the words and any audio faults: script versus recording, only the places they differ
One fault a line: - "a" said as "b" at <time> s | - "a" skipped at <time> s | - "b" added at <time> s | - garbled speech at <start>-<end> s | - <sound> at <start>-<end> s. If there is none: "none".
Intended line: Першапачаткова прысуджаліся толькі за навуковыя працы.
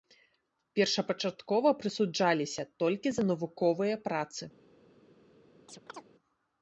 - chirp at 5.7-6.1 s